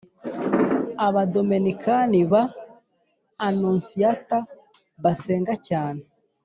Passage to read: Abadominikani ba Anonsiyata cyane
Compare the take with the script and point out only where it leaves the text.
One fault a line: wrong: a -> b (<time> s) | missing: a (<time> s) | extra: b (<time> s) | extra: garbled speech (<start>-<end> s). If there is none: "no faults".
extra: basenga (5.0 s)